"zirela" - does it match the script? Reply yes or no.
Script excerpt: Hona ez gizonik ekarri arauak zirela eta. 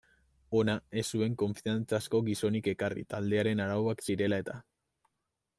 yes